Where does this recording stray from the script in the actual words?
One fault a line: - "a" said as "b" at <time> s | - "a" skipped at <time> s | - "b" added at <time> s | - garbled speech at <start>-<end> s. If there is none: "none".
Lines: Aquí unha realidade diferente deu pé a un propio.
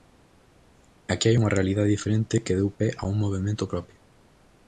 - "hai" added at 1.3 s
- "que" added at 2.5 s
- "movemento" added at 3.2 s